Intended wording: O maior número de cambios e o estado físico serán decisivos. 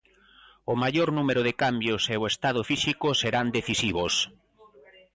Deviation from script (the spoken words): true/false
false